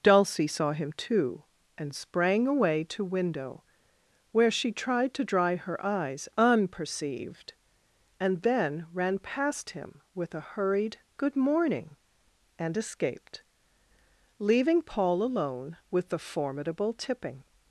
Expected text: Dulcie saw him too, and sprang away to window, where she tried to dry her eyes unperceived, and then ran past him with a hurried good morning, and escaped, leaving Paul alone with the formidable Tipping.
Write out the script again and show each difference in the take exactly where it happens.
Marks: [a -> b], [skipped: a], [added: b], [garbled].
Dulcie saw him too, and sprang away to window, where she tried to dry her eyes unperceived, and then ran past him with a hurried good morning, and escaped, leaving Paul alone with the formidable Tipping.